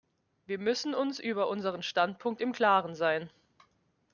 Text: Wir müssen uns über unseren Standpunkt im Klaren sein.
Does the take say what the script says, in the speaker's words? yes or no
yes